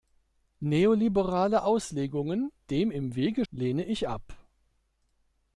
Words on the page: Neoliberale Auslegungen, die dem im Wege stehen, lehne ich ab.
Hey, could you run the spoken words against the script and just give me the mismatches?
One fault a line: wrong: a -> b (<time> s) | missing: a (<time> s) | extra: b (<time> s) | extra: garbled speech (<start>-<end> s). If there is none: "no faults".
missing: die (2.5 s)
missing: stehen (3.4 s)